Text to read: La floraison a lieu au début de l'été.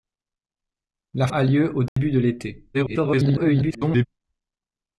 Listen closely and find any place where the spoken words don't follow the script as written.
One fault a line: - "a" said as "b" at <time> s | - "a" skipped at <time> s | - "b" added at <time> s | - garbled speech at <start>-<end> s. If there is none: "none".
- "floraison" skipped at 1.3 s
- garbled speech at 2.7-4.1 s